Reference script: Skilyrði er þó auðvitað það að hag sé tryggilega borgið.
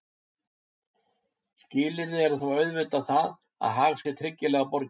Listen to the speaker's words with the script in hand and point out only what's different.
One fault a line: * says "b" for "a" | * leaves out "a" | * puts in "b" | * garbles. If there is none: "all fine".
all fine